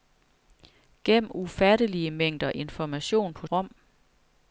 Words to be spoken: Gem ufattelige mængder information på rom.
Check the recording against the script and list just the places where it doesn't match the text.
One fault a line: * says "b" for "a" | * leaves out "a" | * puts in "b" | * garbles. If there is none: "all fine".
all fine